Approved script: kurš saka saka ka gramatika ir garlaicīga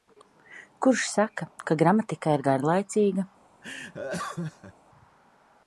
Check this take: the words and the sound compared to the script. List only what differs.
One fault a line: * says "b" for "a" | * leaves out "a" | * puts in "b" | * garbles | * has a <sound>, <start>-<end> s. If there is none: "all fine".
* leaves out "saka"
* has a laugh, 3.6-4.7 s